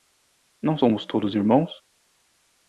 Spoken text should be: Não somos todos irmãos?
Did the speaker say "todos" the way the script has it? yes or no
yes